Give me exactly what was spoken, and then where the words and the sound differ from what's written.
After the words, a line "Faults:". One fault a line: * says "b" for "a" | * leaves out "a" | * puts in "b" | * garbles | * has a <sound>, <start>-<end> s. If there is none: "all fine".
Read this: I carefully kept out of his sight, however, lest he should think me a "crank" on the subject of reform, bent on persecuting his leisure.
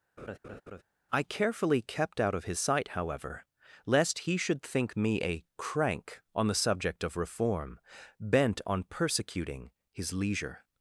I carefully kept out of his sight, however, lest he should think me a "crank" on the subject of reform, bent on persecuting his leisure.
Faults:
* has a laugh, 0.2-0.8 s